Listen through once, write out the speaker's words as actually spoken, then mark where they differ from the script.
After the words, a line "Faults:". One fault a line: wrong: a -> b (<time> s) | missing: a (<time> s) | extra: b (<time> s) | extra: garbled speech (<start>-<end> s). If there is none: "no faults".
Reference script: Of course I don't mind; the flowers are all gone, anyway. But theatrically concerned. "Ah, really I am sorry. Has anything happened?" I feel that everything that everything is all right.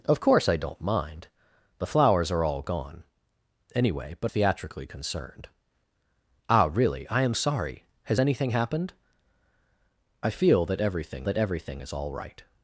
Of course I don't mind; the flowers are all gone, anyway. But theatrically concerned. "Ah, really I am sorry. Has anything happened?" I feel that everything that everything is all right.
Faults:
no faults